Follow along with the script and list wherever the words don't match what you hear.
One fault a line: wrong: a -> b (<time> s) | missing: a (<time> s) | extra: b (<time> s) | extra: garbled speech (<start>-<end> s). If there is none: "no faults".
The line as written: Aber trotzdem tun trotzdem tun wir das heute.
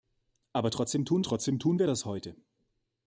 no faults